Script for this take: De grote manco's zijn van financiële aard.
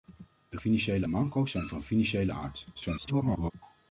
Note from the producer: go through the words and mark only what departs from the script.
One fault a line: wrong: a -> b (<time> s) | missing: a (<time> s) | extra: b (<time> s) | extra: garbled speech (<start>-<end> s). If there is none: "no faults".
wrong: grote -> financiële (0.6 s)
extra: garbled speech (2.7-3.5 s)